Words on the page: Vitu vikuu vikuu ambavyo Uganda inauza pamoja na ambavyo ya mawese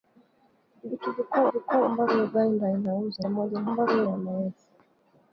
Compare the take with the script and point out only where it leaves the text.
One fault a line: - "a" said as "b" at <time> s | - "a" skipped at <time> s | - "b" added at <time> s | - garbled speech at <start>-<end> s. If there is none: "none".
none